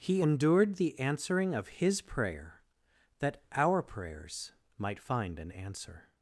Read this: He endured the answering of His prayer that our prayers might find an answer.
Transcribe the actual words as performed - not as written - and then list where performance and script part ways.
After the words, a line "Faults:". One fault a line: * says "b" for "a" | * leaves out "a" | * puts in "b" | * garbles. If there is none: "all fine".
He endured the answering of His prayer that our prayers might find an answer.
Faults:
all fine